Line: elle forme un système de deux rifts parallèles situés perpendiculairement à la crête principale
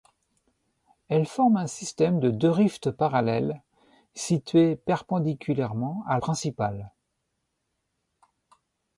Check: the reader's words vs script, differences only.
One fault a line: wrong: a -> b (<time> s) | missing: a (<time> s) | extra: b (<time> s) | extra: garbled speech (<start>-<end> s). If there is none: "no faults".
missing: la crête (6.2 s)